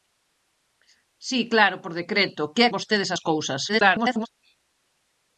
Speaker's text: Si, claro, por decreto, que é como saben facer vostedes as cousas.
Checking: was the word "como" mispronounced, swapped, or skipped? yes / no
yes